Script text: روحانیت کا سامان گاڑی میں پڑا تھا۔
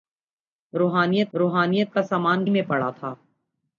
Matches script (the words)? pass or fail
fail